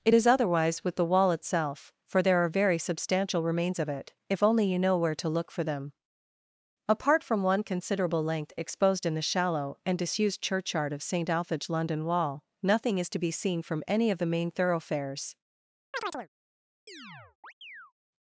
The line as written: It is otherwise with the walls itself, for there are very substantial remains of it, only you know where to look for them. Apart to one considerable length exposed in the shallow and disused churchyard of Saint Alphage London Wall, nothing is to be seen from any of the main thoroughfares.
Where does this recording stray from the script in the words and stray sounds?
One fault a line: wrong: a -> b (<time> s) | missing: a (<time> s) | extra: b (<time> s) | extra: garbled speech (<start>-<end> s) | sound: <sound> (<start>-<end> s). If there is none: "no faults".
wrong: walls -> wall (1.0 s)
extra: if (4.3 s)
wrong: to -> from (7.2 s)
sound: chirp (15.9-16.3 s)
sound: chirp (16.9-17.9 s)